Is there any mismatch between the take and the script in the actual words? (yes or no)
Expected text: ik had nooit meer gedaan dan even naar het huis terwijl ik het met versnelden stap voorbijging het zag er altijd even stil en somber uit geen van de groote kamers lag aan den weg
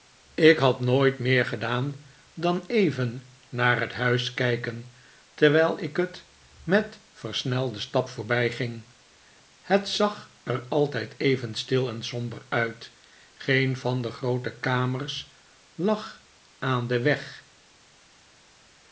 yes